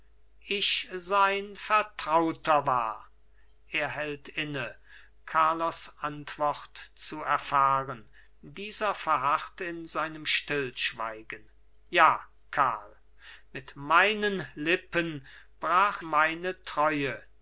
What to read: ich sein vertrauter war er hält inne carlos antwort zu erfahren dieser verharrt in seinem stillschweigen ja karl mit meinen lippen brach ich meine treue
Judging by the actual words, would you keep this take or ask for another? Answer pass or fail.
fail